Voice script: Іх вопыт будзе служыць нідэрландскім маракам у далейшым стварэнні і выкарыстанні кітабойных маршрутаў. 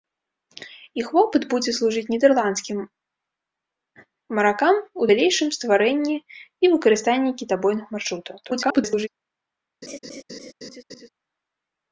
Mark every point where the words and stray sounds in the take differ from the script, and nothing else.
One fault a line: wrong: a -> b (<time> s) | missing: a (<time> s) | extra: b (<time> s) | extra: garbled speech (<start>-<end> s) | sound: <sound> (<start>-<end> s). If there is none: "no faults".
extra: garbled speech (8.4-9.1 s)
sound: laugh (9.8-11.1 s)